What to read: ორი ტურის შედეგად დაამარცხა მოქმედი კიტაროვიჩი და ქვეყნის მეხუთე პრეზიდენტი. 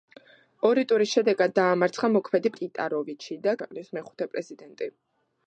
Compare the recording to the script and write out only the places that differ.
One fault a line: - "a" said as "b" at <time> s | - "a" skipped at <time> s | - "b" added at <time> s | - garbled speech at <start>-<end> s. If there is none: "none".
none